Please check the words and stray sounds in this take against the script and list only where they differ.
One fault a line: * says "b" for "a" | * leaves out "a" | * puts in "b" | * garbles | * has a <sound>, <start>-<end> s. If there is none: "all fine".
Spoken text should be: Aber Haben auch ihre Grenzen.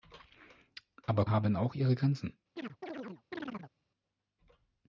* has a chirp, 2.6-3.7 s